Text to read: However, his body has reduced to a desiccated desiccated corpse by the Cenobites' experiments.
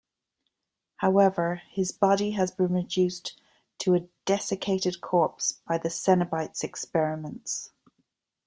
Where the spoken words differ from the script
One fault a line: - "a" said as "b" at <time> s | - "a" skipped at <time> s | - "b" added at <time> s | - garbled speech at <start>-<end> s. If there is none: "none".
- "been" added at 2.5 s
- "desiccated" skipped at 5.0 s